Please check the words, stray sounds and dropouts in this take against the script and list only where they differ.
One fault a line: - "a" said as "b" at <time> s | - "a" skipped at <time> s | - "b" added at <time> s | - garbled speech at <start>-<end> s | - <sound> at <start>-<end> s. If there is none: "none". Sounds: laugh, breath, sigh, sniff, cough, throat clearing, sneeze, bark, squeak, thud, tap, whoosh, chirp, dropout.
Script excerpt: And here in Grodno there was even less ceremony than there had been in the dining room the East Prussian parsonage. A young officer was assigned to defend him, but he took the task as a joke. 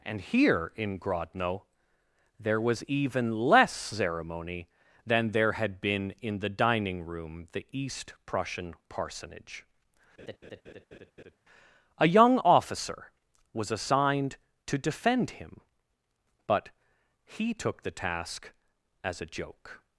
- laugh at 10.2-11.4 s